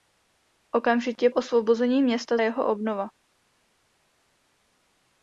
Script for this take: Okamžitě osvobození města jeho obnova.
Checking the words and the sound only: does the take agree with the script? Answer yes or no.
yes